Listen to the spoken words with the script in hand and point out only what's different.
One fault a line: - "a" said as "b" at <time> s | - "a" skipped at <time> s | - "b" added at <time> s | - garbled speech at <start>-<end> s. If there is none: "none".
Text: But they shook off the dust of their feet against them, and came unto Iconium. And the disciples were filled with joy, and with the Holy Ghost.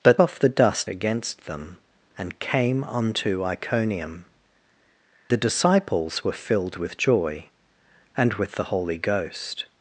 - "they shook" skipped at 0.2 s
- "of their feet" skipped at 0.9 s
- "And" skipped at 4.2 s